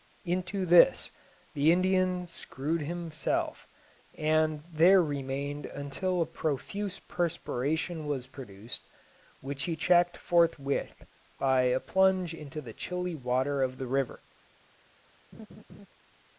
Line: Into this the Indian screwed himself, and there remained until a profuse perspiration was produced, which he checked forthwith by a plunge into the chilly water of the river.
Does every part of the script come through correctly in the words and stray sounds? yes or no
no